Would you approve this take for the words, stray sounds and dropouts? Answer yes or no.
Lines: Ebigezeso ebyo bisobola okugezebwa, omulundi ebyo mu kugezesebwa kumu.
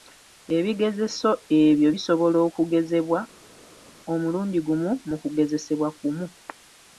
no